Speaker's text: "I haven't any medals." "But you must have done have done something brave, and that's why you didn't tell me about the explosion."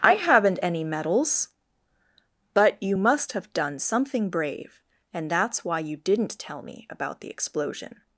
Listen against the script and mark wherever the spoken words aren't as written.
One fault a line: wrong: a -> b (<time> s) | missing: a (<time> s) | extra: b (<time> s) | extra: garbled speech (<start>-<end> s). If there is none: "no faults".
missing: have done (3.8 s)